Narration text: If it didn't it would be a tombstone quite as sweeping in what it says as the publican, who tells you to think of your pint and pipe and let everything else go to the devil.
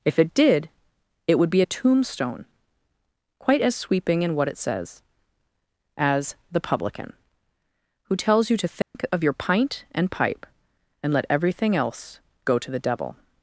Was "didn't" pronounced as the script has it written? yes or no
no